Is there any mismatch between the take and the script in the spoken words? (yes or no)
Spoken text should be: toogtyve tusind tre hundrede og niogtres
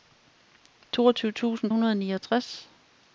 yes